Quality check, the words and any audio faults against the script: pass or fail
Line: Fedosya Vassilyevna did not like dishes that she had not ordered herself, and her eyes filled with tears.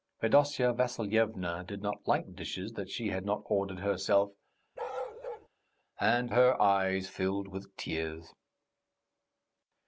fail